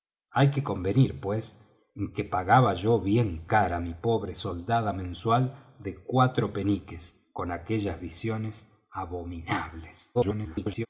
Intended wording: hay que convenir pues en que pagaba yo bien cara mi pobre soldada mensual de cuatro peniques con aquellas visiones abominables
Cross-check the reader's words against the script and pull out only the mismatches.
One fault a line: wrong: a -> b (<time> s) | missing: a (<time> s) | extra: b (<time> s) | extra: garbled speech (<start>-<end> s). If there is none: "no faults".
extra: garbled speech (10.1-10.9 s)